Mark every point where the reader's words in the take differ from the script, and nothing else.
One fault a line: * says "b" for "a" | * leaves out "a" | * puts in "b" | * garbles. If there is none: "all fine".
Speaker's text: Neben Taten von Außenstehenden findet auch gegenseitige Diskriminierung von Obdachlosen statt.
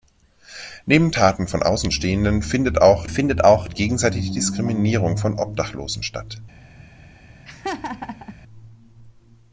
* puts in "findet auch"